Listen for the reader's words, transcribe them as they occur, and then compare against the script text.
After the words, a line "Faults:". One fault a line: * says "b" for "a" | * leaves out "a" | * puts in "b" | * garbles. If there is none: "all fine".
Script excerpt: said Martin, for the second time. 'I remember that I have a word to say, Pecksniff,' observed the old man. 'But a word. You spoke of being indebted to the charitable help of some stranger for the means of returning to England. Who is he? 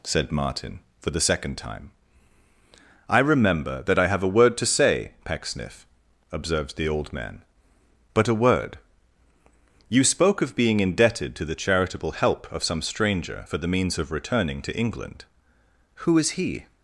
said Martin, for the second time. 'I remember that I have a word to say, Pecksniff,' observed the old man. 'But a word. You spoke of being indebted to the charitable help of some stranger for the means of returning to England. Who is he?
Faults:
all fine